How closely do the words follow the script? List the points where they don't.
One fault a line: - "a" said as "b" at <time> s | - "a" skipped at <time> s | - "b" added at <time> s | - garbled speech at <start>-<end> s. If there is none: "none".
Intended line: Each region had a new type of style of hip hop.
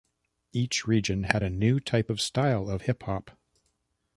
none